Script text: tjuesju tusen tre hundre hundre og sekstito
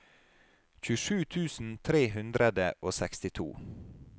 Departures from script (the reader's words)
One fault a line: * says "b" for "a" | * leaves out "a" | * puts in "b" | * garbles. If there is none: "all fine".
* leaves out "hundre"